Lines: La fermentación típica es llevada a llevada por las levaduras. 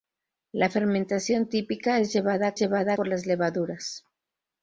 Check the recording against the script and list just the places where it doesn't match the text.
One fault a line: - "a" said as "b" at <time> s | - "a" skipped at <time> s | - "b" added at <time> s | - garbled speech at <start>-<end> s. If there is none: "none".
none